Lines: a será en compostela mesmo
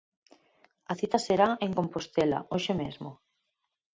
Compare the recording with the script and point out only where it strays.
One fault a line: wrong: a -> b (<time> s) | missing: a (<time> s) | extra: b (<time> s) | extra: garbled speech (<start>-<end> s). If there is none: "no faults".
extra: cita (1.0 s)
extra: hoxe (2.5 s)